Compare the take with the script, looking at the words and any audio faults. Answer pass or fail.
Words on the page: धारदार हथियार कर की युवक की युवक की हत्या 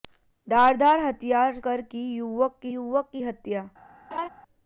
fail